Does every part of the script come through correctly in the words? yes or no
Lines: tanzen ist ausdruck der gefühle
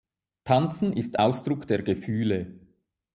yes